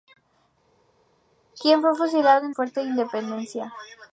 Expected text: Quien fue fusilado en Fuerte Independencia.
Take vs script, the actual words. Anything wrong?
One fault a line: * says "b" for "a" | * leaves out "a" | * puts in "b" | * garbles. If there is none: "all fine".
all fine